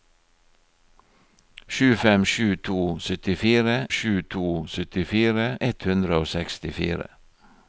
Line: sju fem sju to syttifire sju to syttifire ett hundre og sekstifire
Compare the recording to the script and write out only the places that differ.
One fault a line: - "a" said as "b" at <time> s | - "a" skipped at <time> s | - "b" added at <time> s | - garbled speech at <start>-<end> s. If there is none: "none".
none